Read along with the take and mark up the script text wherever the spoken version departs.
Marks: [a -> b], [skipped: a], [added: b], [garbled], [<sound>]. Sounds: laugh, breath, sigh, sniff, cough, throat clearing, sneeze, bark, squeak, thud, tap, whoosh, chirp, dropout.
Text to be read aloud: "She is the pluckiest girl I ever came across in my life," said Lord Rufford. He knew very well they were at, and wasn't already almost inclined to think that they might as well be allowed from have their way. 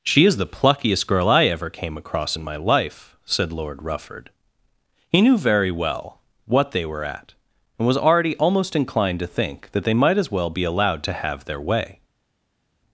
"She is the pluckiest girl I ever came across in my life," said Lord Rufford. He knew very well [added: what] they were at, and [wasn't -> was] already almost inclined to think that they might as well be allowed [from -> to] have their way.